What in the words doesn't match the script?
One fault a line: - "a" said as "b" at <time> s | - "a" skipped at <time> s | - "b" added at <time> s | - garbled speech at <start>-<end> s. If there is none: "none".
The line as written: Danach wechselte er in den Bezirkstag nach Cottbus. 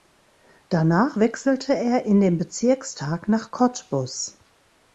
none